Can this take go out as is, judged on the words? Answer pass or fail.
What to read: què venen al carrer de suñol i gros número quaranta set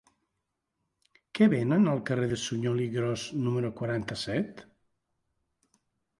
pass